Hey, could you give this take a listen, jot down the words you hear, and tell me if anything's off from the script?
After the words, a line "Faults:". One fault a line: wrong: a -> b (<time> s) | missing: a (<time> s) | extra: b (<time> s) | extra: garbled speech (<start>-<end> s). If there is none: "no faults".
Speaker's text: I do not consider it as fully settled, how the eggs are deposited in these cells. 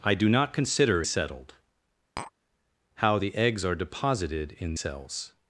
I do not consider settled, how the eggs are deposited in cells.
Faults:
missing: it as fully (1.0 s)
missing: these (4.7 s)